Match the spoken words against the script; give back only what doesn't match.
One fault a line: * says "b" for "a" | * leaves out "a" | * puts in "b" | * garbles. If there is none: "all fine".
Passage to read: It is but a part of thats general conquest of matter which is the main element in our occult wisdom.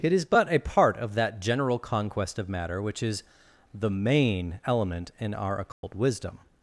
* says "that" for "thats"